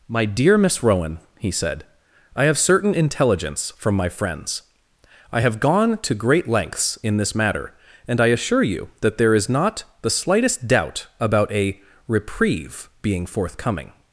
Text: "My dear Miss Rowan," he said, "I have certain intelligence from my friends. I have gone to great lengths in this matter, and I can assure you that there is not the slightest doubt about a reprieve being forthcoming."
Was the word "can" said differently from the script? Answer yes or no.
yes